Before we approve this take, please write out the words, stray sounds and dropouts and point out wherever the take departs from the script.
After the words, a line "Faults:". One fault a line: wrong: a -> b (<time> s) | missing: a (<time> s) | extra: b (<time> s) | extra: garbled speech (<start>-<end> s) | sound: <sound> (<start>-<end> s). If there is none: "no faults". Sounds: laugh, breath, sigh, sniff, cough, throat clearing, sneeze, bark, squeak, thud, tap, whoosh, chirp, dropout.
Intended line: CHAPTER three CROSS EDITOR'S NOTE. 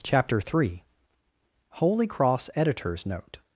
CHAPTER three HOLY CROSS EDITOR'S NOTE.
Faults:
extra: HOLY (1.7 s)